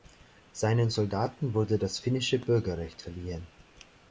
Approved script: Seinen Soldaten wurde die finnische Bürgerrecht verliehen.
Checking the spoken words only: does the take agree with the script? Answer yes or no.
no